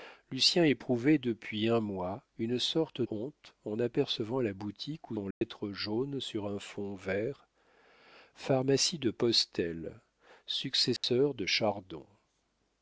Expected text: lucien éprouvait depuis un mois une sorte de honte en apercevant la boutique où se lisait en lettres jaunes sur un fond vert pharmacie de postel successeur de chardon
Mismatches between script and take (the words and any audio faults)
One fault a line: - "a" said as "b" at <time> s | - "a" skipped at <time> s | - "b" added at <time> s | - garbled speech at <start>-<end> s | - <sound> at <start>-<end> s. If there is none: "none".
- "de" skipped at 3.0 s
- "se lisait" skipped at 5.2 s
- dropout at 5.3-5.4 s
- dropout at 11.0-11.0 s